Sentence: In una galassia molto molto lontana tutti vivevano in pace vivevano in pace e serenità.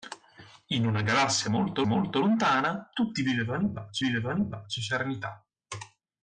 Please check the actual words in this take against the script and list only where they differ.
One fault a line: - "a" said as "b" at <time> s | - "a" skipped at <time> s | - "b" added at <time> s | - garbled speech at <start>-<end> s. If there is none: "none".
none